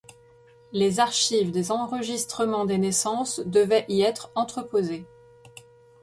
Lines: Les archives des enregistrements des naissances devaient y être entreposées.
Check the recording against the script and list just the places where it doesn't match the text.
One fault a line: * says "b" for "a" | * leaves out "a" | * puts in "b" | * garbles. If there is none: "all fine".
all fine